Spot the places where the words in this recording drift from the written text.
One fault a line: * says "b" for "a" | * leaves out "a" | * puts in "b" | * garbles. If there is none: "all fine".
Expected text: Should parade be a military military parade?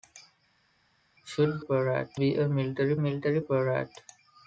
all fine